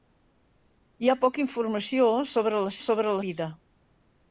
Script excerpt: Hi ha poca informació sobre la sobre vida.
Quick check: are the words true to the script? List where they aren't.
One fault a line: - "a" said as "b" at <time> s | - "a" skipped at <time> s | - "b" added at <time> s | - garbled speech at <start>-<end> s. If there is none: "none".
none